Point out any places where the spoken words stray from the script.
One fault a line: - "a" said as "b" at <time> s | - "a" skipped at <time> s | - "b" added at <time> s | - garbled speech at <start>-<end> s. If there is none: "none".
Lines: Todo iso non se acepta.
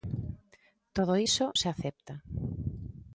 - "non" skipped at 1.4 s